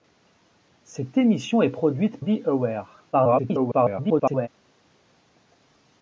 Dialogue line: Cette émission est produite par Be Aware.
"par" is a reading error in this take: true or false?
true